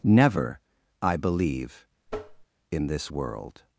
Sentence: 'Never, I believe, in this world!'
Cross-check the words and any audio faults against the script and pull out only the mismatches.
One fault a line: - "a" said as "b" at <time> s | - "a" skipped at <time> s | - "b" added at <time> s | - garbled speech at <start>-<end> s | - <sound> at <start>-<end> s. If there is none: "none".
- tap at 2.1-2.5 s